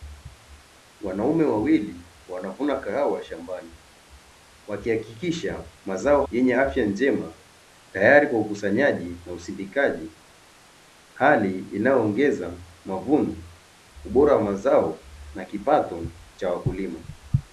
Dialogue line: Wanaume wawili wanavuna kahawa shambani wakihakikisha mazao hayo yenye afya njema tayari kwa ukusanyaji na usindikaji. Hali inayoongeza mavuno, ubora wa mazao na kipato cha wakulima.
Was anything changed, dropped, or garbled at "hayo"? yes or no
yes